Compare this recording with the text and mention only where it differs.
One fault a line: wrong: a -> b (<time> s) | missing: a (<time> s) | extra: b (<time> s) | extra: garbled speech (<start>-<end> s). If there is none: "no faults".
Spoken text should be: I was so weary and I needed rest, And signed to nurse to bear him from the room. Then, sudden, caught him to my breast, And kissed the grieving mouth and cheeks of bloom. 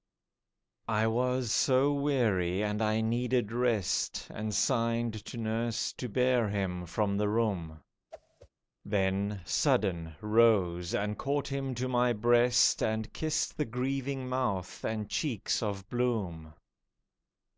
extra: rose and (10.2 s)